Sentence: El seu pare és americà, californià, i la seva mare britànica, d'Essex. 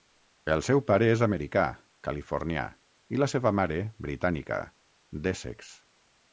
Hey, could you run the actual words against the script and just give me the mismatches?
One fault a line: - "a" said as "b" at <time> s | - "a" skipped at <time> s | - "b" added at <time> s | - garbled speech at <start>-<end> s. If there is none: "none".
none